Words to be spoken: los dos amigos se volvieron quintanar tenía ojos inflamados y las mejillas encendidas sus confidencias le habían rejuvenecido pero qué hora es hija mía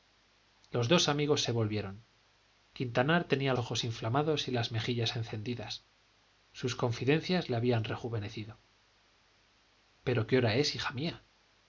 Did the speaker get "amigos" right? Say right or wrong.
right